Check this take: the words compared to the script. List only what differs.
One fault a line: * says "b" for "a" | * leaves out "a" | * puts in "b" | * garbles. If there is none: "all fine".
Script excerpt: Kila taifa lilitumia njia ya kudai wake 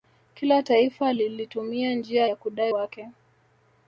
all fine